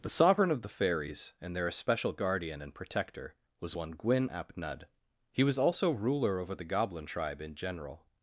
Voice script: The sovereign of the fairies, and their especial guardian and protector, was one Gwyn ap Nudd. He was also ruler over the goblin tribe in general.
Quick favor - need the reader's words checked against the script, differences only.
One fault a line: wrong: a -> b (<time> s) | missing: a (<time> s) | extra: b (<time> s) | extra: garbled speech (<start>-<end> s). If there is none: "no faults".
no faults